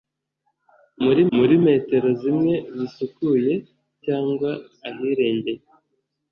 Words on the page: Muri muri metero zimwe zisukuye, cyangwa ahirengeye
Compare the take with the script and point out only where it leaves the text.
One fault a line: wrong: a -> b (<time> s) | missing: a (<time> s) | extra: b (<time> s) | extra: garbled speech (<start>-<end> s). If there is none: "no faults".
no faults